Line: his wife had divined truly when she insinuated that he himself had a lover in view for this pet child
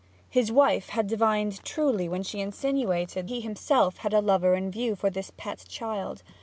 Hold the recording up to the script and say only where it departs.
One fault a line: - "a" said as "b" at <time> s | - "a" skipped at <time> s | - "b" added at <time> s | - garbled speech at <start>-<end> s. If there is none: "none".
- "that" skipped at 3.3 s